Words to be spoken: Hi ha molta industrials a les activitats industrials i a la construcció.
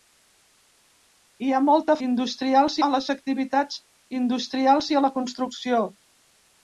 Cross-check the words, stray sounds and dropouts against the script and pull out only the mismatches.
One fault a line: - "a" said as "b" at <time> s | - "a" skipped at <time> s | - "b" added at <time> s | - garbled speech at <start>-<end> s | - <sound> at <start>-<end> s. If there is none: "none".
none